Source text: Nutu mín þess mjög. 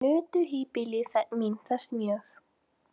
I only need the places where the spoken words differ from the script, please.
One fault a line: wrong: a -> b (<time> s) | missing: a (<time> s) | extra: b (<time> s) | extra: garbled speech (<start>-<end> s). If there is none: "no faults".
extra: híbýli (0.5 s)